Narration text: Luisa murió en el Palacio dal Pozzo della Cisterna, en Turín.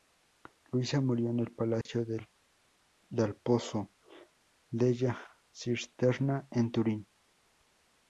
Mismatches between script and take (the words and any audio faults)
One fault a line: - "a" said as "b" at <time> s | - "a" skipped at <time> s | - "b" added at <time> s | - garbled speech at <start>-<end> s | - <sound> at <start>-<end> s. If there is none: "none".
- dropout at 1.8-1.9 s